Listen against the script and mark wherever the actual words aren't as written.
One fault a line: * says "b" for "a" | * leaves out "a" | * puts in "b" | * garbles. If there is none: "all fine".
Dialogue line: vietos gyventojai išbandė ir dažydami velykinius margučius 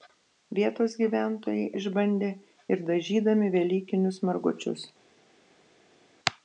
all fine